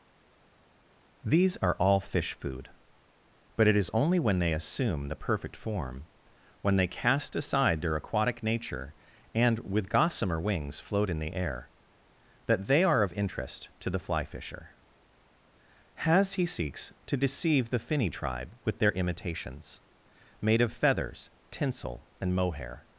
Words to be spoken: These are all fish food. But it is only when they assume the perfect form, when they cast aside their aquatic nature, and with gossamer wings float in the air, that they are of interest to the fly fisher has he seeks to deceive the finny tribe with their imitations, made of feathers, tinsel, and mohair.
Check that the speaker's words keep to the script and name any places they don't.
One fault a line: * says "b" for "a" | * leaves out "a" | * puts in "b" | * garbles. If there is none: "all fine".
all fine